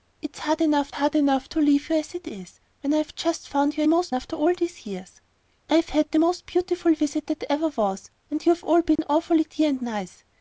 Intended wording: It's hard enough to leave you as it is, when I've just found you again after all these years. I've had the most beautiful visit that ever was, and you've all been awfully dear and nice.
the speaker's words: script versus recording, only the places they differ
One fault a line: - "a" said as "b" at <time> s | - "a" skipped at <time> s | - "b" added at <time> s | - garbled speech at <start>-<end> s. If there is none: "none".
- "hard enough" added at 0.9 s
- "again" said as "most" at 3.9 s